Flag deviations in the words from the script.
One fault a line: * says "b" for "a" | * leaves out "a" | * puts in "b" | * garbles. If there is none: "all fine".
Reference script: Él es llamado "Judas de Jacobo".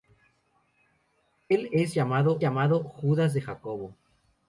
* puts in "llamado"